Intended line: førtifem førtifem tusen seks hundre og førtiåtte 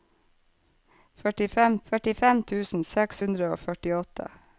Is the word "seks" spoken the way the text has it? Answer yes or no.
yes